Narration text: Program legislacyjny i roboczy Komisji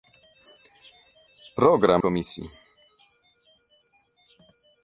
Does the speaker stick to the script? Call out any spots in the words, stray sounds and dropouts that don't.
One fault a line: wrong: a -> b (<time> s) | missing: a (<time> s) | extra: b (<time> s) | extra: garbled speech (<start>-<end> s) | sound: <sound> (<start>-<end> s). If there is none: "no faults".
missing: legislacyjny i roboczy (2.0 s)